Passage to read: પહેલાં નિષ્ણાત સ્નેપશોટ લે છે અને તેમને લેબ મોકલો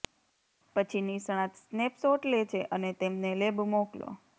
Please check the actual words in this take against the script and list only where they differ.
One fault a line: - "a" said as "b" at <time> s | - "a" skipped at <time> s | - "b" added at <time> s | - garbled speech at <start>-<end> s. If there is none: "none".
- "પહેલાં" said as "પછી" at 0.8 s